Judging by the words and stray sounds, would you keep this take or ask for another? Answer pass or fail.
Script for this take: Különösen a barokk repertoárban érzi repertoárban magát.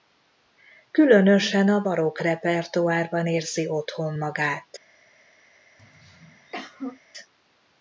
fail